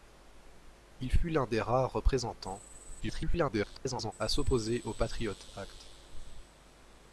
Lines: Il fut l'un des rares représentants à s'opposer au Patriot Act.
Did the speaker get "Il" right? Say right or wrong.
right